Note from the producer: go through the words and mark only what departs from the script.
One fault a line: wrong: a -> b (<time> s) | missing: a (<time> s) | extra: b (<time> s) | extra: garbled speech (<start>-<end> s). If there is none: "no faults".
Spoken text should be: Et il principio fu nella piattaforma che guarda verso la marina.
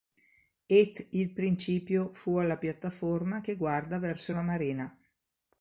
wrong: nella -> alla (2.4 s)